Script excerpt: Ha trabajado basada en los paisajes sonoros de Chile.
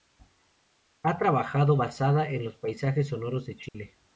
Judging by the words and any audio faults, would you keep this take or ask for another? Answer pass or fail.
fail